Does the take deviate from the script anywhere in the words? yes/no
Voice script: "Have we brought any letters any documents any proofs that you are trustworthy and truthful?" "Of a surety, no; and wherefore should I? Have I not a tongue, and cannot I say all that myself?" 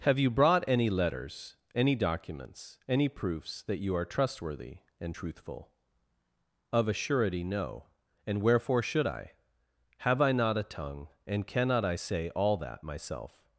yes